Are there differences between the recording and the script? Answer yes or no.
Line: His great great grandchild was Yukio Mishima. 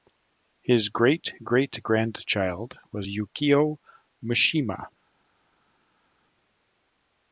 no